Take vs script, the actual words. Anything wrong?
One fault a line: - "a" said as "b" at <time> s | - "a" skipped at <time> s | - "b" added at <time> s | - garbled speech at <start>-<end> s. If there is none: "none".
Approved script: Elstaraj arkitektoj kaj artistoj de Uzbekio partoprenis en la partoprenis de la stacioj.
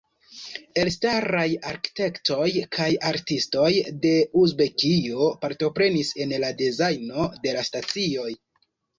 - "partoprenis" said as "dezajno" at 6.6 s